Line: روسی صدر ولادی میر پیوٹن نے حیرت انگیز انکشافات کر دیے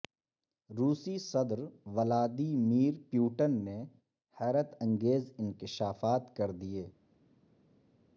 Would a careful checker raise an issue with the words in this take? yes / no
no